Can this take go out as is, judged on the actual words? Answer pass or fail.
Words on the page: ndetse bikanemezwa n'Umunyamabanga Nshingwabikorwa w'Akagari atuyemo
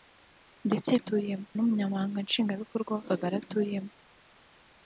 fail